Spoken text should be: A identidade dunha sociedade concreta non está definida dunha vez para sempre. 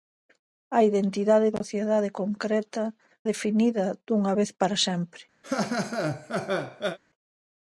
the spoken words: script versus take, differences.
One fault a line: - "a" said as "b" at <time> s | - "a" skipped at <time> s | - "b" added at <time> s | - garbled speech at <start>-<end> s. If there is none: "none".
- "dunha" skipped at 1.5 s
- "non está" skipped at 2.8 s